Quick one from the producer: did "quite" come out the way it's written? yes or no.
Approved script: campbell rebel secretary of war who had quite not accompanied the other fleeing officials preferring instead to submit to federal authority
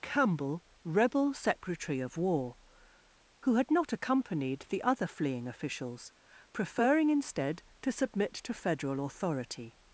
no